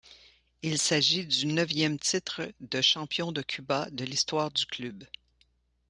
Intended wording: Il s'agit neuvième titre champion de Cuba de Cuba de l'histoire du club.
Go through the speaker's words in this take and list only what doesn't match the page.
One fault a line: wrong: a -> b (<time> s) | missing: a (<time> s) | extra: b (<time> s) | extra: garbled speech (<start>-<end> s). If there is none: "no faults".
extra: du (1.3 s)
missing: champion (2.5 s)
wrong: Cuba -> champion (2.8 s)